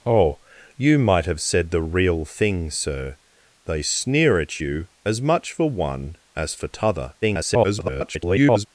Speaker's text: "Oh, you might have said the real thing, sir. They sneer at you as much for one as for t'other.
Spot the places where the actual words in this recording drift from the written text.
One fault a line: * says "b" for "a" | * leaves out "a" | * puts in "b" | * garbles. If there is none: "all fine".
* garbles